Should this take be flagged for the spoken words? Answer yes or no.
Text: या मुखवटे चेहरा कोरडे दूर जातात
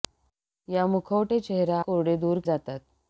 no